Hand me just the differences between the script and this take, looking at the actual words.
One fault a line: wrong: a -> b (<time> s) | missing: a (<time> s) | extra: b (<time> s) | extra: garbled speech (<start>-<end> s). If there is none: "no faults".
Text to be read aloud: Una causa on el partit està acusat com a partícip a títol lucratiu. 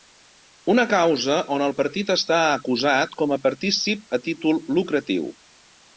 no faults